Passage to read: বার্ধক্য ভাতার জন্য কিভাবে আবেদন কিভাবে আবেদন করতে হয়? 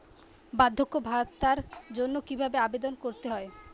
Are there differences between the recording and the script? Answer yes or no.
yes